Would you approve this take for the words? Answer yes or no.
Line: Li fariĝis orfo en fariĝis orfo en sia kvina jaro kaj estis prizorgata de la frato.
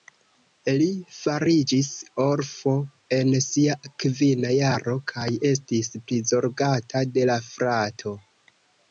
no